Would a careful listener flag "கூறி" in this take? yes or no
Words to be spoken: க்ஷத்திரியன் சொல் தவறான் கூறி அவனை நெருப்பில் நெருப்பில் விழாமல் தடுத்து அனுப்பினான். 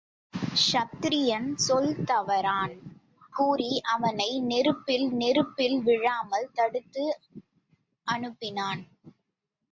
no